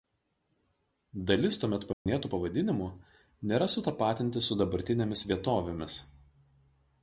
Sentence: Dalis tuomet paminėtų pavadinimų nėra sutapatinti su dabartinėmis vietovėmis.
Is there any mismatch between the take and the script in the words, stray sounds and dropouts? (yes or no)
yes